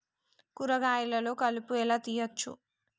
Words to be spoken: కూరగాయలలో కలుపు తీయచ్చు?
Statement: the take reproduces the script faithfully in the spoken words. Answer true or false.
false